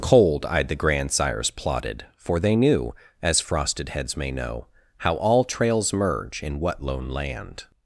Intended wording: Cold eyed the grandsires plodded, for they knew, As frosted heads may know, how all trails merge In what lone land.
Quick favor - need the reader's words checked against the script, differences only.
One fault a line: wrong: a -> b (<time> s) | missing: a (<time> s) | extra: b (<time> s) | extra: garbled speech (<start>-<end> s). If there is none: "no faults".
no faults